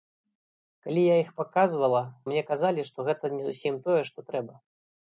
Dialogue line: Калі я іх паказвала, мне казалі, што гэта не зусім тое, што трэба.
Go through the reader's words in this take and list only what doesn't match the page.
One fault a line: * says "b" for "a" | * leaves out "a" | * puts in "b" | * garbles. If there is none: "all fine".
all fine